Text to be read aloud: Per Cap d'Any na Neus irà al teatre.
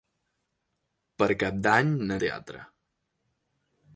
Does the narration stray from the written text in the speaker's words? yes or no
yes